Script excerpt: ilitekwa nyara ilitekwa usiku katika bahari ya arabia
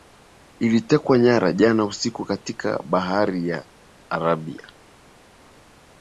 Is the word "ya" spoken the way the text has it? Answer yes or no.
yes